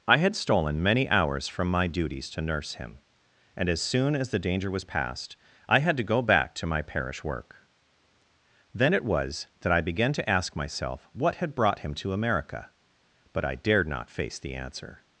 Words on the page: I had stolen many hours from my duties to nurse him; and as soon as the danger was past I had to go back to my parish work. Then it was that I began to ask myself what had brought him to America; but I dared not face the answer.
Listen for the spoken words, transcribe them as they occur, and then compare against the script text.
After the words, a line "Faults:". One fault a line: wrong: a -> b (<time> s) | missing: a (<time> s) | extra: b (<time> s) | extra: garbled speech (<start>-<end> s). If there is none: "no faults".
I had stolen many hours from my duties to nurse him; and as soon as the danger was past I had to go back to my parish work. Then it was that I began to ask myself what had brought him to America; but I dared not face the answer.
Faults:
no faults